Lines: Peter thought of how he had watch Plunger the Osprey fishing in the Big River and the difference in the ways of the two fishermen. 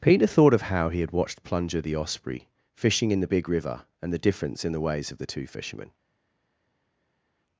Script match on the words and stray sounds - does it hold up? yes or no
no